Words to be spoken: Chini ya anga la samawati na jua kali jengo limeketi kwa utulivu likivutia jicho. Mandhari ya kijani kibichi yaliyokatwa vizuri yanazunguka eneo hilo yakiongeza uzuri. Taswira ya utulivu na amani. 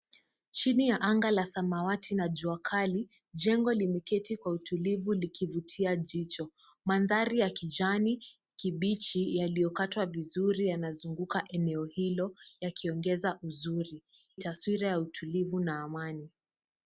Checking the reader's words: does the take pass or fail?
pass